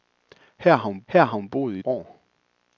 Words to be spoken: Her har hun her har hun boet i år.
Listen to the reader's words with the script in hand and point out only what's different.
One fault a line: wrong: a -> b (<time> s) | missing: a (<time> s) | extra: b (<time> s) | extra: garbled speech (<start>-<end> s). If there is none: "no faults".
no faults